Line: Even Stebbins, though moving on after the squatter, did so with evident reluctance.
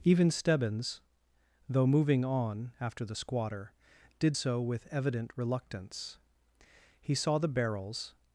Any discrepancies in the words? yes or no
yes